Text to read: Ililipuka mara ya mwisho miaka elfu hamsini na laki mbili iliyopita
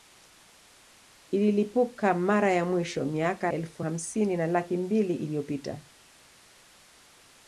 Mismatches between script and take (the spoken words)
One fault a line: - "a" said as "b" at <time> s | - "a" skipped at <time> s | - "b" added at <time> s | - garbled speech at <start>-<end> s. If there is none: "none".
none